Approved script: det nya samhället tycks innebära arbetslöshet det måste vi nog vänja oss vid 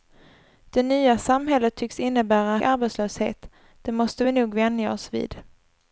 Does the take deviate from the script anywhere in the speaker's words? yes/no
no